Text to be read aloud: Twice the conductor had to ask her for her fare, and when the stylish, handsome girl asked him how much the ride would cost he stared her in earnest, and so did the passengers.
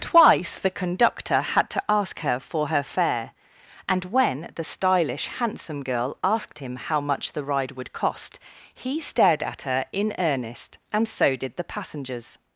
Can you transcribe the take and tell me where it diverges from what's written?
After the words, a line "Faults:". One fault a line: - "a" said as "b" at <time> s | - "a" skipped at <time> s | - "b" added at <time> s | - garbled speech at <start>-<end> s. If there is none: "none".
Twice the conductor had to ask her for her fare, and when the stylish, handsome girl asked him how much the ride would cost he stared at her in earnest, and so did the passengers.
Faults:
- "at" added at 9.4 s